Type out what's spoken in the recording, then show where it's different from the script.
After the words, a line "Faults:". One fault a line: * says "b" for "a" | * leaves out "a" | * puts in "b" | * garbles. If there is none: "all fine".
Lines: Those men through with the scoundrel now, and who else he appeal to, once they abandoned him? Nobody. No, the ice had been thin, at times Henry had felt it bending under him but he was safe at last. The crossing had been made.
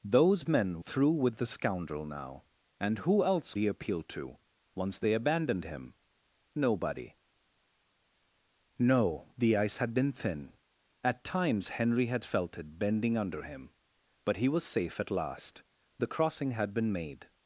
Those men through with the scoundrel now, and who else he appeal to, once they abandoned him? Nobody. No, the ice had been thin, at times Henry had felt it bending under him but he was safe at last. The crossing had been made.
Faults:
all fine